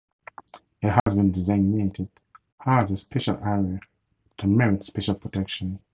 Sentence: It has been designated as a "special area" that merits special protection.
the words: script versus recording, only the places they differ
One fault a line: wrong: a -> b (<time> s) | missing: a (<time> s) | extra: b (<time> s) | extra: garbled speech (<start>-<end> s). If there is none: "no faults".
no faults